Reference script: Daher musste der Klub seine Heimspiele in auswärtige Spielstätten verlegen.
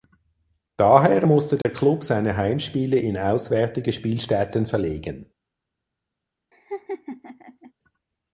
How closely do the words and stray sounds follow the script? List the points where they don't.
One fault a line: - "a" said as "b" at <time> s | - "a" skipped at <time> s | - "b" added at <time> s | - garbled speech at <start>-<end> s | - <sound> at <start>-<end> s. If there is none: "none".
- dropout at 1.6-1.7 s
- laugh at 6.5-7.7 s